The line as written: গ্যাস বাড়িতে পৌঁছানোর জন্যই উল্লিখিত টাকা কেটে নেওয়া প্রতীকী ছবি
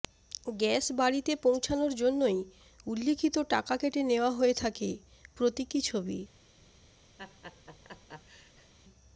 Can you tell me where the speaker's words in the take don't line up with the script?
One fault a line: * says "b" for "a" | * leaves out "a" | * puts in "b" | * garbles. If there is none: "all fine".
* puts in "হয়ে থাকে"